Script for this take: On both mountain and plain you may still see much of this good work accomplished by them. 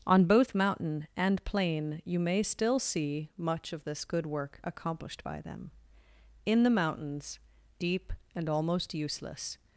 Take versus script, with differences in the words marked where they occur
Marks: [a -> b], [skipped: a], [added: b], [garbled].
On both mountain and plain you may still see much of this good work accomplished by them. [added: In the mountains deep and almost useless]